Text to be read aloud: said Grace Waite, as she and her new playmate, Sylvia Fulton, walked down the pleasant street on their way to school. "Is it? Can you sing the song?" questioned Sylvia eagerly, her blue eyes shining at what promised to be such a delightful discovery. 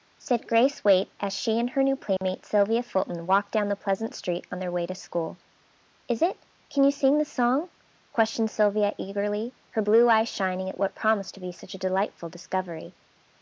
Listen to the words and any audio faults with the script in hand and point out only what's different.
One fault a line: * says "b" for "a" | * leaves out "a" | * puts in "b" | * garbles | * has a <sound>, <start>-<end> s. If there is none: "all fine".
* has a dropout, 2.2-2.2 s